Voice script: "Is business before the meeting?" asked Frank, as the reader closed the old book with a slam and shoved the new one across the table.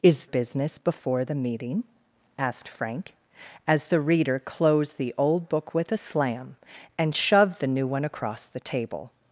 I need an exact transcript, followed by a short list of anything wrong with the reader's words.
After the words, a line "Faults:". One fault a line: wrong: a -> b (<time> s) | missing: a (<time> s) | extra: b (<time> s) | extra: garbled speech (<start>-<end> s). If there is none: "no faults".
"Is business before the meeting?" asked Frank, as the reader closed the old book with a slam and shoved the new one across the table.
Faults:
no faults